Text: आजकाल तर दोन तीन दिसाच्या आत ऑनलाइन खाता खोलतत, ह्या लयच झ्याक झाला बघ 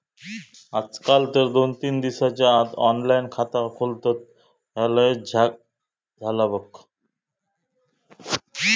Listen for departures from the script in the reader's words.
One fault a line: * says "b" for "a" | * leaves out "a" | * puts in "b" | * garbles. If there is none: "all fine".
all fine